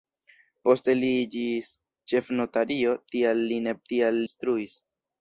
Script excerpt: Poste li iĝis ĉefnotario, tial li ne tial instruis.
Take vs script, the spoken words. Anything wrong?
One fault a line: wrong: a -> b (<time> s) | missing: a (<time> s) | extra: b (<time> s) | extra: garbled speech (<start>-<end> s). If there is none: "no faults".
no faults